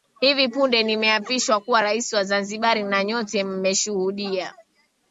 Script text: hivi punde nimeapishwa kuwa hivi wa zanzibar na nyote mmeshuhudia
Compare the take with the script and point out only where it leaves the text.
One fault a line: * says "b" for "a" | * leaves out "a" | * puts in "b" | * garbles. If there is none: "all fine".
* says "rais" for "hivi"